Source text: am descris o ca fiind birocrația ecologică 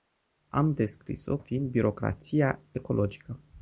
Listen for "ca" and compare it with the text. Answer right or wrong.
wrong